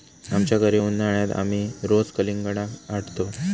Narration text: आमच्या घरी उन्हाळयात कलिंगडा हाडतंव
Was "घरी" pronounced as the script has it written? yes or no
yes